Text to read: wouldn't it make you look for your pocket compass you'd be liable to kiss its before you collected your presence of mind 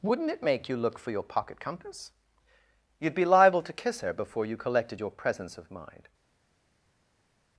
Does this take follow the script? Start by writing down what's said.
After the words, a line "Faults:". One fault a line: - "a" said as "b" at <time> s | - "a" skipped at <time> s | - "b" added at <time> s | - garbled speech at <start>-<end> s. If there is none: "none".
wouldn't it make you look for your pocket compass you'd be liable to kiss her before you collected your presence of mind
Faults:
- "its" said as "her" at 4.0 s